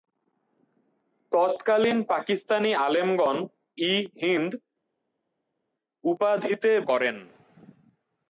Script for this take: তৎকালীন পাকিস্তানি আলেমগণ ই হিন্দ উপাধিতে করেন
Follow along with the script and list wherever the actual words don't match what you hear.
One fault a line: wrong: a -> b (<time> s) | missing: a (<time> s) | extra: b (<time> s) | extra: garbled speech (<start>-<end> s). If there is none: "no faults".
no faults